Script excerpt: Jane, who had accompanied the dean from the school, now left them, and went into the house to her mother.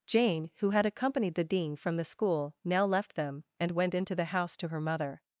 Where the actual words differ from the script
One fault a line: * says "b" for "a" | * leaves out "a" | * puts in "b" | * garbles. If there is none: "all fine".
all fine